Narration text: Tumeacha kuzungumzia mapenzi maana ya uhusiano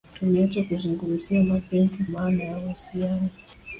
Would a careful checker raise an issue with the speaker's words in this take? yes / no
no